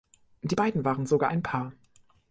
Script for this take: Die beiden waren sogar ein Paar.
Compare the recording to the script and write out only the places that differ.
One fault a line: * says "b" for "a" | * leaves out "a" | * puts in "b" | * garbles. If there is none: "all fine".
all fine